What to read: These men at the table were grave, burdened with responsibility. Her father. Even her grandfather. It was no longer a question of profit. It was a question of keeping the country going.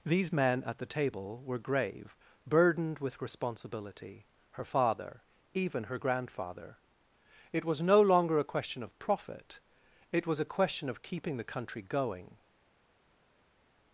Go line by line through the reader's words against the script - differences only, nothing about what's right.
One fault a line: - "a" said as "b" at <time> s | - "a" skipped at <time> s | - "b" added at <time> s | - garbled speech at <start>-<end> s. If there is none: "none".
none